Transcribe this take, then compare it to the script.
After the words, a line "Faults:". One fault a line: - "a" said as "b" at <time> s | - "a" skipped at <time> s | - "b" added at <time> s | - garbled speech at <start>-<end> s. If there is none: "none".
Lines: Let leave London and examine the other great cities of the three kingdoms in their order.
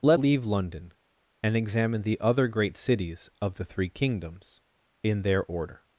Let leave London and examine the other great cities of the three kingdoms in their order.
Faults:
none